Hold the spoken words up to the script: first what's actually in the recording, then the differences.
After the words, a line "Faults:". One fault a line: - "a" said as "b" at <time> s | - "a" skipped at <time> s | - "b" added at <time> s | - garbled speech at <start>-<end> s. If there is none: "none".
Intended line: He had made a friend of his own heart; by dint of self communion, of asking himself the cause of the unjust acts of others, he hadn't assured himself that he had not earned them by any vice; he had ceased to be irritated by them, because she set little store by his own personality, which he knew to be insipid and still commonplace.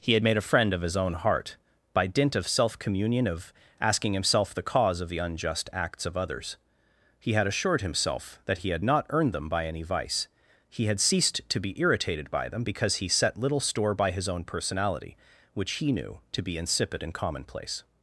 He had made a friend of his own heart; by dint of self communion, of asking himself the cause of the unjust acts of others, he had assured himself that he had not earned them by any vice; he had ceased to be irritated by them, because he set little store by his own personality, which he knew to be insipid and commonplace.
Faults:
- "hadn't" said as "had" at 7.3 s
- "she" said as "he" at 13.0 s
- "still" skipped at 17.1 s